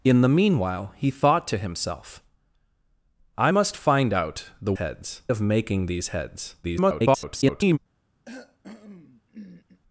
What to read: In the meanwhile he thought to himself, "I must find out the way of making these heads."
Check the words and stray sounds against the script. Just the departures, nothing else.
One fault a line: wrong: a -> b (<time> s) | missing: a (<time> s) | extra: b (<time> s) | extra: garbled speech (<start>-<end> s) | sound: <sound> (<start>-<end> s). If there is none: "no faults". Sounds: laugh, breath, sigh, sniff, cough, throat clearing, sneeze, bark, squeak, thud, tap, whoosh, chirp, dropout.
wrong: way -> heads (4.7 s)
extra: garbled speech (6.6-7.8 s)
sound: cough (8.2-9.8 s)